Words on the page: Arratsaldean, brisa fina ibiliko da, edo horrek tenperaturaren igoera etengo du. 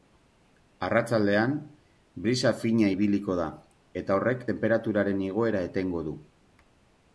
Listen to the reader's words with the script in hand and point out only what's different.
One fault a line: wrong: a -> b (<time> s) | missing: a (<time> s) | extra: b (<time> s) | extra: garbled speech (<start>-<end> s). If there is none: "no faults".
wrong: edo -> eta (4.0 s)